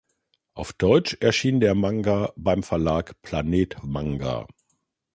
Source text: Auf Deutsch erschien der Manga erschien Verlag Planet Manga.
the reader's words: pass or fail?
fail